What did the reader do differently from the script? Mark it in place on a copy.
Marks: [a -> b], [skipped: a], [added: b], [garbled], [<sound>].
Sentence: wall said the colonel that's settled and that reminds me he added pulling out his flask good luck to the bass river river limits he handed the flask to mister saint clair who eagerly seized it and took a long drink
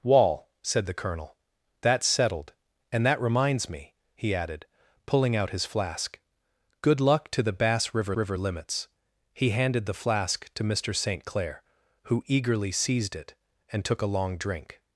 wall said the colonel that's settled and that reminds me he added pulling out his flask good luck to the bass river river limits he handed the flask to mister saint clair who eagerly seized it and took a long drink